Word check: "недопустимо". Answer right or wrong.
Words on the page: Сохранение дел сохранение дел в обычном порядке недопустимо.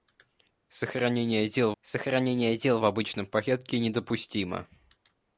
right